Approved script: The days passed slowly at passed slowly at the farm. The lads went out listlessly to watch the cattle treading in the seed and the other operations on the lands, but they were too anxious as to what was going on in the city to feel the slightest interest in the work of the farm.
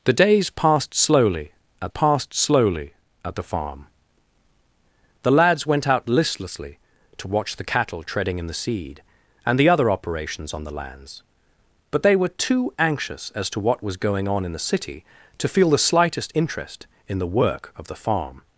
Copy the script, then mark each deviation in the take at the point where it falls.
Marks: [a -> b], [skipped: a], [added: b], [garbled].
The days passed slowly at passed slowly at the farm. The lads went out listlessly to watch the cattle treading in the seed and the other operations on the lands, but they were too anxious as to what was going on in the city to feel the slightest interest in the work of the farm.